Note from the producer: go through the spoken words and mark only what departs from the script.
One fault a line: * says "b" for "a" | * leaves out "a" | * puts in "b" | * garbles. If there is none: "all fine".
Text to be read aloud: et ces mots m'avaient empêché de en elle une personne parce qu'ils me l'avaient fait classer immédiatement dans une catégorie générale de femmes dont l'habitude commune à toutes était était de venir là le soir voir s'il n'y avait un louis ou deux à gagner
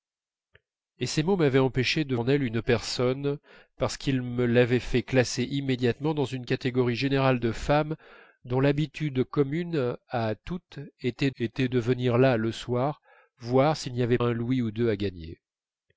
all fine